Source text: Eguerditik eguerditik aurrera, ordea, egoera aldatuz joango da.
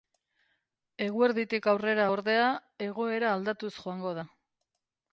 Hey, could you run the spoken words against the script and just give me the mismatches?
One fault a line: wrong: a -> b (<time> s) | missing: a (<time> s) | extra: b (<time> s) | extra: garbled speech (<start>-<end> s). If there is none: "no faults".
missing: eguerditik (1.7 s)